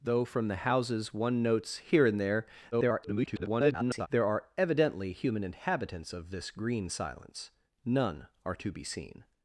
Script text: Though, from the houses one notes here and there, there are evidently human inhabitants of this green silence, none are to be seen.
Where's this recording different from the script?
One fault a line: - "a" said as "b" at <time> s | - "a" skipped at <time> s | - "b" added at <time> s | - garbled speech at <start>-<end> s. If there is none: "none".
- garbled speech at 2.7-4.1 s